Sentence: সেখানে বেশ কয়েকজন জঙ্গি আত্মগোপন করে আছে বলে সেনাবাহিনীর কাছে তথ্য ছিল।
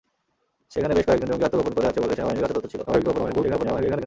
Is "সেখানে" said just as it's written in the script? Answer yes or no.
yes